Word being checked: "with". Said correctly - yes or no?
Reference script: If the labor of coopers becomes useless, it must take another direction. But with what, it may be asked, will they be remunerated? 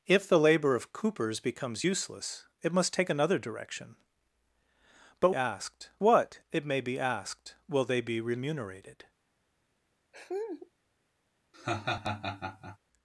no